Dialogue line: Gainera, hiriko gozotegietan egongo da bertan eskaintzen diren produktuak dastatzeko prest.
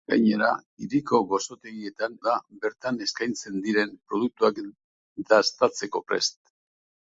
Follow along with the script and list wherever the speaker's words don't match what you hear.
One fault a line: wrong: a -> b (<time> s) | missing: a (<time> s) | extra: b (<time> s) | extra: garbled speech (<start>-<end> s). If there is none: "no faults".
missing: egongo (2.1 s)